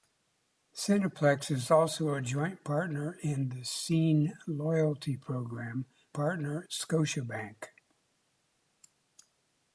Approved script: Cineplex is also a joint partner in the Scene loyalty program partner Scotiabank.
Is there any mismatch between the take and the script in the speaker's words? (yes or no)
no